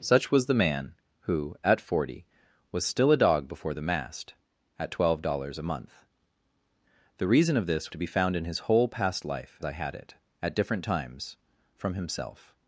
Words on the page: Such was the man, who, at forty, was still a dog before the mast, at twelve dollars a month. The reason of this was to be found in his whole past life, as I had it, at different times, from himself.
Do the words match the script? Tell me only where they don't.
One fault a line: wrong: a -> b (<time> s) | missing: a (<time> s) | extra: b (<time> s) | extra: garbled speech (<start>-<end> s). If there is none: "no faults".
missing: was (7.9 s)
missing: as (9.6 s)